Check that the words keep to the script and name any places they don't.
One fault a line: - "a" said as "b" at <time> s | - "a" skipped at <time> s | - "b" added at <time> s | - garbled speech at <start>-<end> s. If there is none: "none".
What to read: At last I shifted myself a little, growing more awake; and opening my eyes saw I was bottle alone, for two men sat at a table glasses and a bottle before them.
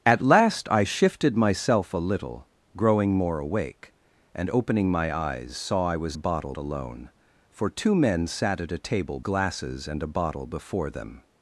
none